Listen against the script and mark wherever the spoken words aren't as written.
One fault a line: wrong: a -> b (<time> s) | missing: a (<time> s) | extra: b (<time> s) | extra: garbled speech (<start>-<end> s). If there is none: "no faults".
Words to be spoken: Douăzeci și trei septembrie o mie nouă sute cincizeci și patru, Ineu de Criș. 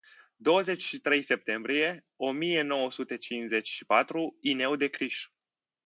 no faults